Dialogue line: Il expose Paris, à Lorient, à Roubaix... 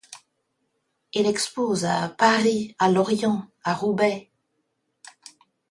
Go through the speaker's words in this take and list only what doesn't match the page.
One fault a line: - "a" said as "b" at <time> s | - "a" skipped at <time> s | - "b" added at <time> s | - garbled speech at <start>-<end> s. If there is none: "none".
- "à" added at 1.8 s